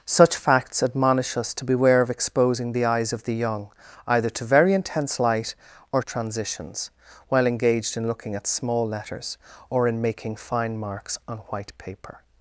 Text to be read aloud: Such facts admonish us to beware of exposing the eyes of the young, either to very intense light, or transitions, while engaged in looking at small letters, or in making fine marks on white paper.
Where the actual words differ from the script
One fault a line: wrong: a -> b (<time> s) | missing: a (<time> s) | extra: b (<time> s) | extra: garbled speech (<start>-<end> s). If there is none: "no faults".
no faults